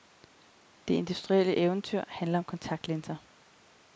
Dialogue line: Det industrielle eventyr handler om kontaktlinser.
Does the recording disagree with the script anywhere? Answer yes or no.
no